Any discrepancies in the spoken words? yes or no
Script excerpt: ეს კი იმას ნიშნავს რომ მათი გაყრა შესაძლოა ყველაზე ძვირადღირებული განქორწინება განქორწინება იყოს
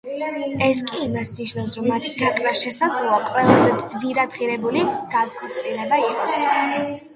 yes